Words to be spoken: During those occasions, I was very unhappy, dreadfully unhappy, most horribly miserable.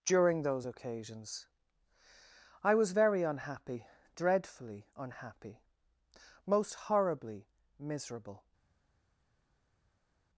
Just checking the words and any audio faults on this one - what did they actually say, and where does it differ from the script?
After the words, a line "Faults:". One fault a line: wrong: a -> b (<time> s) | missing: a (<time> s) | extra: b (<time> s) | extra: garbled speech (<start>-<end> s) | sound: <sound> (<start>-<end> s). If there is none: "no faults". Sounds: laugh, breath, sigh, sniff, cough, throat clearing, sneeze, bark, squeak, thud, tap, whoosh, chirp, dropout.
During those occasions, I was very unhappy, dreadfully unhappy, most horribly miserable.
Faults:
no faults